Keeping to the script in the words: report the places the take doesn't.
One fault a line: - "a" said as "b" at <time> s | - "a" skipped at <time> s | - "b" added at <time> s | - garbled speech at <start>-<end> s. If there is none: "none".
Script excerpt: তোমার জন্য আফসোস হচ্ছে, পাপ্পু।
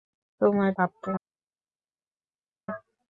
- "জন্য আফসোস হচ্ছে" skipped at 0.7 s